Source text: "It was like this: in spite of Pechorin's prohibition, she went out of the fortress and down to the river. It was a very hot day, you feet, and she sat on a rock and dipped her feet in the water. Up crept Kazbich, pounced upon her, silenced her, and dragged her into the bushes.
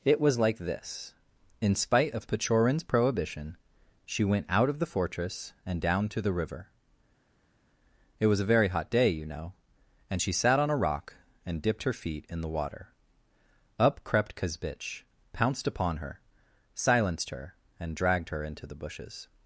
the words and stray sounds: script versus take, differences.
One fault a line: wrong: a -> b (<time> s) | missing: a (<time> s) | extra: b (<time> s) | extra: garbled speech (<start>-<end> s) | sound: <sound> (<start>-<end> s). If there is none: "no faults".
wrong: feet -> know (9.2 s)